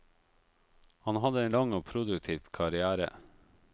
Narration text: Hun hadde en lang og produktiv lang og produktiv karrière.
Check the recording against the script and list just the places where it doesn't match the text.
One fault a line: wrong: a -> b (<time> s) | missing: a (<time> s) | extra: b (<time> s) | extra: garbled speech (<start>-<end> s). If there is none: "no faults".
wrong: Hun -> Han (1.0 s)
missing: lang og produktiv (2.5 s)